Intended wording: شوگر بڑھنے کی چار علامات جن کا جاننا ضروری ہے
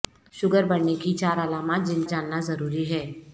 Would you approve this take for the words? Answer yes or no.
no